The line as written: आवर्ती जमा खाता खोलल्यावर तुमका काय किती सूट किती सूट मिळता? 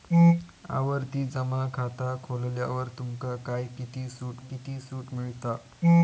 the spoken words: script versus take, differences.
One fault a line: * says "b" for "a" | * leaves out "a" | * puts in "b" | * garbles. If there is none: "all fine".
all fine